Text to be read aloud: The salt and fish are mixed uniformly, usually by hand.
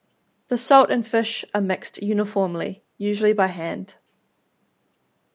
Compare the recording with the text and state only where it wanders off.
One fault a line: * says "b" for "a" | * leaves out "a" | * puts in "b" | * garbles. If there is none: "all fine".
all fine